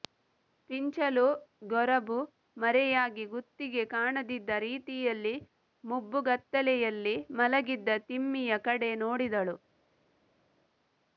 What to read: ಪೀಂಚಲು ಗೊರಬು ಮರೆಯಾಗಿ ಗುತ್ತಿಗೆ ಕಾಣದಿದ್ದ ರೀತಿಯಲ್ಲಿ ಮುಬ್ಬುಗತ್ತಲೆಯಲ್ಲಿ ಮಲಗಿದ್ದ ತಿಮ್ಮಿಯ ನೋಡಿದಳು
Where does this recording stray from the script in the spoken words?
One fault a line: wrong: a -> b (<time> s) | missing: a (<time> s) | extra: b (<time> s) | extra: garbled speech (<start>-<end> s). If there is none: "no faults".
extra: ಕಡೆ (8.7 s)